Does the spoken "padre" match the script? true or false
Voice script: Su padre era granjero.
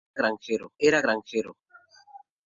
false